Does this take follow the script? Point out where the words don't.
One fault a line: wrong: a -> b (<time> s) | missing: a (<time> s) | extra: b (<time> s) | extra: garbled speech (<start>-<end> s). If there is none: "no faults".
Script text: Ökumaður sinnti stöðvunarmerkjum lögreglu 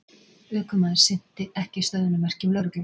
extra: ekki (1.6 s)